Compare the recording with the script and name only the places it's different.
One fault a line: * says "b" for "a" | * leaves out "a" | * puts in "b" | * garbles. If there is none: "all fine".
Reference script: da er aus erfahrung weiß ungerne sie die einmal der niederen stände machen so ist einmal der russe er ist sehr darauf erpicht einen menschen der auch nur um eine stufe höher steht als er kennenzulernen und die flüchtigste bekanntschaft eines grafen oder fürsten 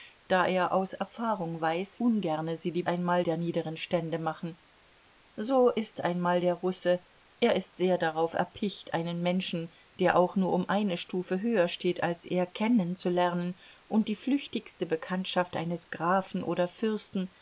all fine